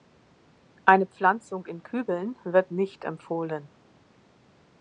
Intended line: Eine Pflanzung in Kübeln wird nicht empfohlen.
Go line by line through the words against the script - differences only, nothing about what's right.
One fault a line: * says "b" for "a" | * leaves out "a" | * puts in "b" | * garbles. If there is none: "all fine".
all fine